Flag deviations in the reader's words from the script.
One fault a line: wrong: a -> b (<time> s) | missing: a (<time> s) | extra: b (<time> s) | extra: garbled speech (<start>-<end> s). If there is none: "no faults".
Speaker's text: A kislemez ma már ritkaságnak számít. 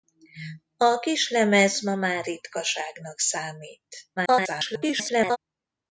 extra: garbled speech (4.2-5.4 s)